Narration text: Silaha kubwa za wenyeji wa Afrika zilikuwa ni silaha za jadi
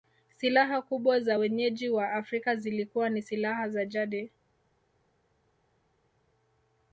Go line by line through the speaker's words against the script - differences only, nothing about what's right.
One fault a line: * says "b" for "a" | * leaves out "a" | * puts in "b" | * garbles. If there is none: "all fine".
all fine